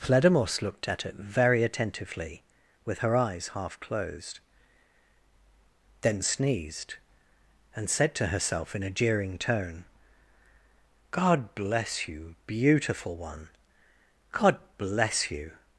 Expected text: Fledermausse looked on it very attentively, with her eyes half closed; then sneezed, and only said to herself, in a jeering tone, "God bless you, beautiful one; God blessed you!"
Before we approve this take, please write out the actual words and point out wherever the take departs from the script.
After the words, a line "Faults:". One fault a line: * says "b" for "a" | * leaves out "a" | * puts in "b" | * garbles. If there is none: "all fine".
Fledermausse looked at it very attentively, with her eyes half closed; then sneezed, and said to herself, in a jeering tone, "God bless you, beautiful one; God bless you!"
Faults:
* says "at" for "on"
* leaves out "only"
* says "bless" for "blessed"